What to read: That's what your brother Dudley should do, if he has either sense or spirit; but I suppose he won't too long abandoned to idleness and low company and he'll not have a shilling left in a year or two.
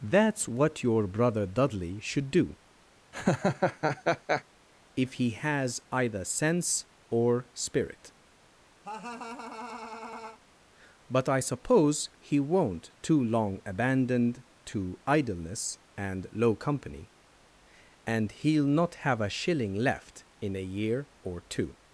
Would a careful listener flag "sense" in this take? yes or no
no